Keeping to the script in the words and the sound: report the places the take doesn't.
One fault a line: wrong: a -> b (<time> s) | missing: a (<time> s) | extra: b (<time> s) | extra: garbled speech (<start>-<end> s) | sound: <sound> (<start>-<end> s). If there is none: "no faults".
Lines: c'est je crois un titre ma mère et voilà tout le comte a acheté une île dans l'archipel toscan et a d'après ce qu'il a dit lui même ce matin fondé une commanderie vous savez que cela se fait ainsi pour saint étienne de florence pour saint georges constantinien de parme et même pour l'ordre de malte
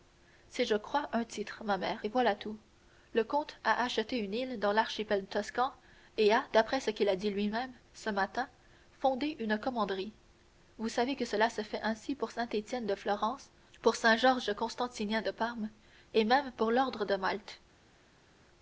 no faults